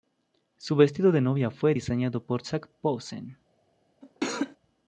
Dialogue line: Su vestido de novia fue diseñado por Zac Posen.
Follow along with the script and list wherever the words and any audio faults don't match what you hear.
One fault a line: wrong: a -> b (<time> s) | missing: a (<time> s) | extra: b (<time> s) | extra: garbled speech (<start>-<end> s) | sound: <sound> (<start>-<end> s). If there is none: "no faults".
sound: cough (4.0-4.6 s)